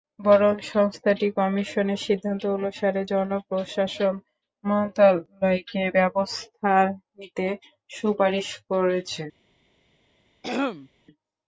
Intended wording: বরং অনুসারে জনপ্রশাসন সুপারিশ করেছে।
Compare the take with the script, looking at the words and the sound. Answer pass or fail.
fail